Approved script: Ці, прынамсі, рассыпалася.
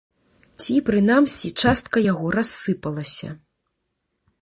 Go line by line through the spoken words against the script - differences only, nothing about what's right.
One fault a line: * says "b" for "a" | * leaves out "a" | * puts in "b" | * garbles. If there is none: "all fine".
* puts in "частка яго"